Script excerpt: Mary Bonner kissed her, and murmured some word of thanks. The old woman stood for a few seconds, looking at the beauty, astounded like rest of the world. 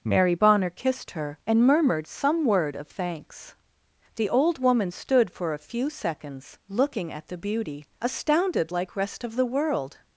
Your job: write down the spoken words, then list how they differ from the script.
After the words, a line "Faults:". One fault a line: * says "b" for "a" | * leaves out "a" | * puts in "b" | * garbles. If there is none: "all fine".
Mary Bonner kissed her, and murmured some word of thanks. The old woman stood for a few seconds, looking at the beauty, astounded like rest of the world.
Faults:
all fine